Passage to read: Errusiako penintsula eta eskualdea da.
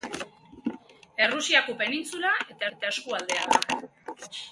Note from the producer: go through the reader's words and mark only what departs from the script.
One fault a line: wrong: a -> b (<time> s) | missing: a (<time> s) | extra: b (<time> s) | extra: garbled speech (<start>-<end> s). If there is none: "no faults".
extra: eta (2.8 s)